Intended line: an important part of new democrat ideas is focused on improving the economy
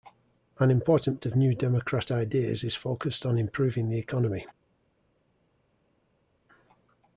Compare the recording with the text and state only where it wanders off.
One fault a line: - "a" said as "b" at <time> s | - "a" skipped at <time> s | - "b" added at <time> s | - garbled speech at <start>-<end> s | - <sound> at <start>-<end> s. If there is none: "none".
- "part" skipped at 1.2 s